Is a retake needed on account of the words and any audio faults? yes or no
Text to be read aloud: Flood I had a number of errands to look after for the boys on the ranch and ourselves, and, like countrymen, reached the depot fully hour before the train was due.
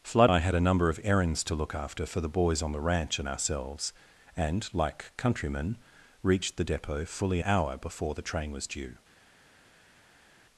no